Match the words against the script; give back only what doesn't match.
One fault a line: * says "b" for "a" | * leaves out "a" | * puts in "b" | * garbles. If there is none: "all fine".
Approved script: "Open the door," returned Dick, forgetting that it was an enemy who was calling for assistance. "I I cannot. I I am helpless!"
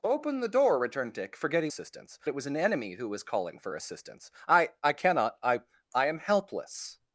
* says "assistance" for "that"